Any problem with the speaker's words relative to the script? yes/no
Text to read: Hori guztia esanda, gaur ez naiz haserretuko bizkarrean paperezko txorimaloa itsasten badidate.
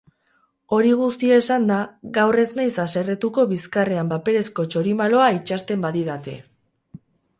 no